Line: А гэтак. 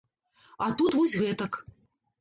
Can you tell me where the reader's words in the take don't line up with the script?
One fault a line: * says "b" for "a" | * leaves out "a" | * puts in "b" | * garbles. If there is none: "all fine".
* puts in "тут вось"